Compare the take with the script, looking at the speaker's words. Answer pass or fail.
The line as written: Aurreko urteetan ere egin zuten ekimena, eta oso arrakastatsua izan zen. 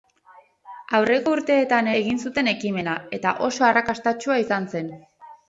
fail